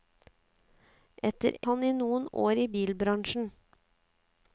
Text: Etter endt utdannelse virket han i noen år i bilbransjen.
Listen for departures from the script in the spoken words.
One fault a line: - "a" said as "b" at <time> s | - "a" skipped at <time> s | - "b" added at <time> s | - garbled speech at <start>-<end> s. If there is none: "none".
- "endt utdannelse virket" skipped at 1.6 s